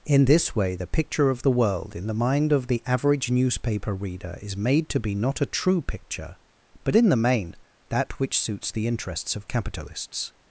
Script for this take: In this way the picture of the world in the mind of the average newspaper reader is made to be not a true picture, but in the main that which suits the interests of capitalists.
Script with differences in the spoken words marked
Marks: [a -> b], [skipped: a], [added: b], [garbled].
In this way the picture of the world in the mind of the average newspaper reader is made to be not a true picture, but in the main that which suits the interests of capitalists.